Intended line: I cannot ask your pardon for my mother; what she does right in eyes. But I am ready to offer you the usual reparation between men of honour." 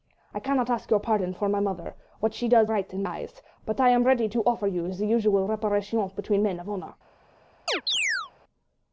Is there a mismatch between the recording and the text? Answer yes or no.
no